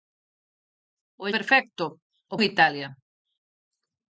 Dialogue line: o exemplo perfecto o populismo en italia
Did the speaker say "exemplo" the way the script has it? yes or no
no